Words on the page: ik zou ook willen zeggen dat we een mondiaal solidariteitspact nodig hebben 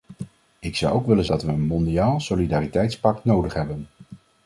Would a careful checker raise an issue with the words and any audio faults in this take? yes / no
yes